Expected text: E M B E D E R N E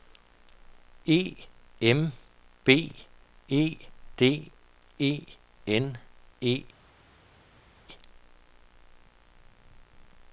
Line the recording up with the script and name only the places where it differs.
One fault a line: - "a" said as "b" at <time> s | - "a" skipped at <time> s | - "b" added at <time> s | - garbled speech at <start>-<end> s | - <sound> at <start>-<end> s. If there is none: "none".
- "R" skipped at 5.1 s